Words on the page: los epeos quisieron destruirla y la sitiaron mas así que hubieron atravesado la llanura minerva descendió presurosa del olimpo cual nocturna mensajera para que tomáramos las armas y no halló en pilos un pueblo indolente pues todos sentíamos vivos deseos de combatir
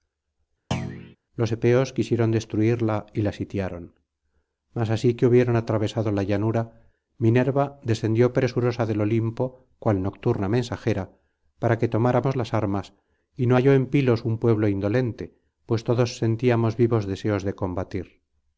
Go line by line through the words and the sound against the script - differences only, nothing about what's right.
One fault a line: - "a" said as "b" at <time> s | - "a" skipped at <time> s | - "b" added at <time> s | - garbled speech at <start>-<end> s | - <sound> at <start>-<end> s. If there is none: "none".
- thud at 0.7-1.2 s